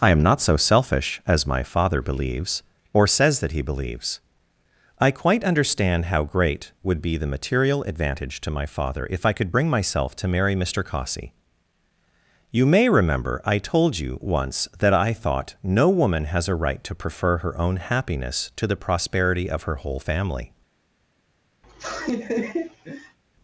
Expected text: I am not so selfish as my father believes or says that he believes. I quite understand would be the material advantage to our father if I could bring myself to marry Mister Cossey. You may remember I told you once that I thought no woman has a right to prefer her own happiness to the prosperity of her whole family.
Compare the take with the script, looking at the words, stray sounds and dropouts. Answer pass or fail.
fail